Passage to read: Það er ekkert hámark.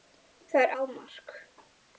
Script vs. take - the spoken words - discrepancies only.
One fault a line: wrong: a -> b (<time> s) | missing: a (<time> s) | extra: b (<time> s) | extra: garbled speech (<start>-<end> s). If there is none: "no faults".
missing: ekkert (0.7 s)